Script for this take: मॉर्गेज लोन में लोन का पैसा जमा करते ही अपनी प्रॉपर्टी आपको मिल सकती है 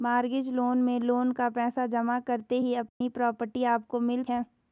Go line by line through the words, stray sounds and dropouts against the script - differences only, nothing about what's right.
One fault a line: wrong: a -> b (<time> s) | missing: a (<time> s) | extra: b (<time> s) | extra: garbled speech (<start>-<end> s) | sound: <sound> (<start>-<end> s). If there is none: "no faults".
sound: dropout (2.9-3.0 s)
missing: सकती (4.2 s)